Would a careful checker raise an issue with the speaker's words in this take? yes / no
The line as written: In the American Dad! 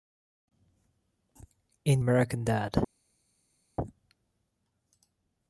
yes